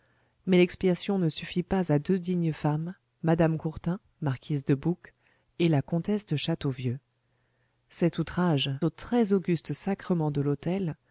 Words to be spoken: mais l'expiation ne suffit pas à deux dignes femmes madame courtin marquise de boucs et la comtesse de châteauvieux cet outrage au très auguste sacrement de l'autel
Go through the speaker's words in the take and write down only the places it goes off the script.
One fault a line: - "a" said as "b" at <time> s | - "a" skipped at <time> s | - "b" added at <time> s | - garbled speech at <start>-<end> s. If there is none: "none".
none